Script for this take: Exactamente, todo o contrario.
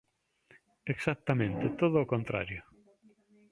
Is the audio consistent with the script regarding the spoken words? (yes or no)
yes